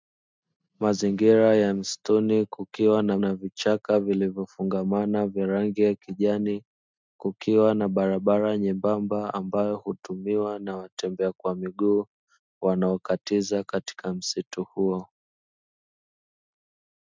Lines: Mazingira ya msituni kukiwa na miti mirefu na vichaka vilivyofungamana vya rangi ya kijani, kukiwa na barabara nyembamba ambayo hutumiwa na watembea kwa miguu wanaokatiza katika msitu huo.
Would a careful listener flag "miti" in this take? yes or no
yes